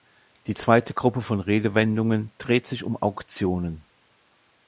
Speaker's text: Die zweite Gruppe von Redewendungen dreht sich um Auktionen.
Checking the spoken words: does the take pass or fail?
pass